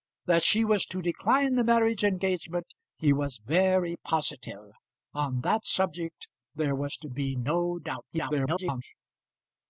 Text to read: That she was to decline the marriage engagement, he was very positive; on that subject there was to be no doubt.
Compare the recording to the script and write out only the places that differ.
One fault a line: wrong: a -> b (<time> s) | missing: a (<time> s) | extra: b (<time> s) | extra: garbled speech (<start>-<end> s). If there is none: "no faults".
extra: garbled speech (8.1-8.8 s)